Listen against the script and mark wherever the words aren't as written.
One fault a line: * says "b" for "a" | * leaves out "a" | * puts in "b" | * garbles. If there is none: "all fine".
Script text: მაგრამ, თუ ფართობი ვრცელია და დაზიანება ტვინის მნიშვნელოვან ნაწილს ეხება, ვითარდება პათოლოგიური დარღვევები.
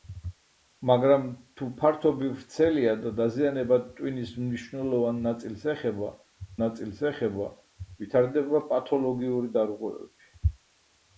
* puts in "ნაწილს ეხება"